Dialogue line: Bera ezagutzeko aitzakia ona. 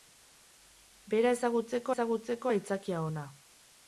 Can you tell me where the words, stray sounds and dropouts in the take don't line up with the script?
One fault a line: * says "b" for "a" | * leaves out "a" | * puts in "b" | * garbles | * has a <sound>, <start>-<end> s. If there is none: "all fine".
* puts in "ezagutzeko"